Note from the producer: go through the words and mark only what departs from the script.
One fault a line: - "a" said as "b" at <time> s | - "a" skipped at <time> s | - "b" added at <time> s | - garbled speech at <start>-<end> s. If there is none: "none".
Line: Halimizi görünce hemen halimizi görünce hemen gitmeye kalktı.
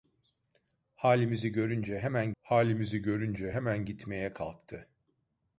none